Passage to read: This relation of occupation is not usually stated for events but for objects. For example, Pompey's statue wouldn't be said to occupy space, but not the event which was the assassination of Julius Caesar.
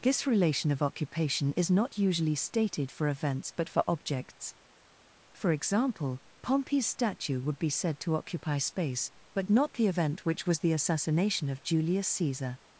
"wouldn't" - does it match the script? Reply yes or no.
no